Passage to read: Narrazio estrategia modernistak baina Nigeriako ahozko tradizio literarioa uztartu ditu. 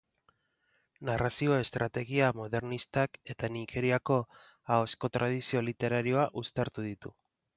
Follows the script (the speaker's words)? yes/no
no